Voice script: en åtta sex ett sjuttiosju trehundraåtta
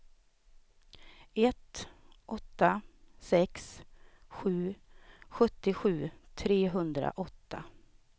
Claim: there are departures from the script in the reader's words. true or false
true